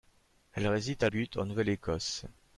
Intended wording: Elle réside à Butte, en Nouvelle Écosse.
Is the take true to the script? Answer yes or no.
yes